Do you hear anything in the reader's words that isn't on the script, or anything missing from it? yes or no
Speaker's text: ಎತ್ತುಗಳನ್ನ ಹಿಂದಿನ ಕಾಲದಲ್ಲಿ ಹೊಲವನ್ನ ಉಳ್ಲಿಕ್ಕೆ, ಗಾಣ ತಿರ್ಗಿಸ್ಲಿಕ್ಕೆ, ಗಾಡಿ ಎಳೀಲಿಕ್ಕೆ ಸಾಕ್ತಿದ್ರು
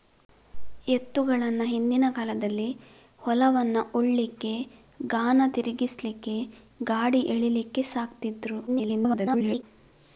yes